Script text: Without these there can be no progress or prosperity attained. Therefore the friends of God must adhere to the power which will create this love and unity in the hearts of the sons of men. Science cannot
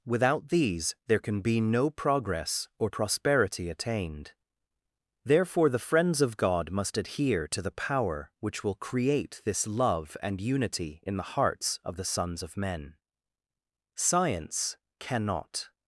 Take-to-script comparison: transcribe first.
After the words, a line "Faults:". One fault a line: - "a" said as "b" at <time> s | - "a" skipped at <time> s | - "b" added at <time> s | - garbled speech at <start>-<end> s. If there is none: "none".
Without these there can be no progress or prosperity attained. Therefore the friends of God must adhere to the power which will create this love and unity in the hearts of the sons of men. Science cannot
Faults:
none